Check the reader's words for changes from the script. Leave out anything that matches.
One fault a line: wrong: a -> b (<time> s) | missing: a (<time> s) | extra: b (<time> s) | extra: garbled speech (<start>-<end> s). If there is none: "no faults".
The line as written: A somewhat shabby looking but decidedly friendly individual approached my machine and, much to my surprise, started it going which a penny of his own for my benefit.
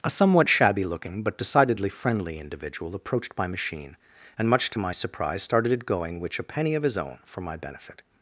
no faults